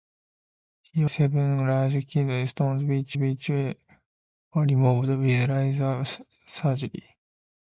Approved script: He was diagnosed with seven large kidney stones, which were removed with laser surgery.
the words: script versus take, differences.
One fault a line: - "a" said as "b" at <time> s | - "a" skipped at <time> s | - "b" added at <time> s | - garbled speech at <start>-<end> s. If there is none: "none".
- "was diagnosed with" skipped at 1.1 s
- "which" added at 3.2 s